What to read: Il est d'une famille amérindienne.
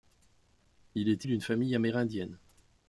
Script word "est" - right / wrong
right